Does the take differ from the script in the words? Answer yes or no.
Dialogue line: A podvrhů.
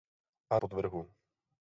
no